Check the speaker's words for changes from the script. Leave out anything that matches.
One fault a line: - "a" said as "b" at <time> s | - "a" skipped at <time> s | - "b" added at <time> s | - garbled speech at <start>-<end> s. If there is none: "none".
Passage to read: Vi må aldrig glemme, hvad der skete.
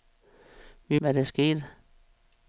- "må aldrig glemme" skipped at 1.0 s